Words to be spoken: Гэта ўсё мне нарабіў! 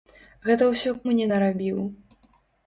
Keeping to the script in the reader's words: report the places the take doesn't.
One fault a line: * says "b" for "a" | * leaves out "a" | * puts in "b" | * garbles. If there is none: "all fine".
all fine